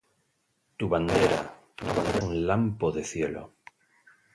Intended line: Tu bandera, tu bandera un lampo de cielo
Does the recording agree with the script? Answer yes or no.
yes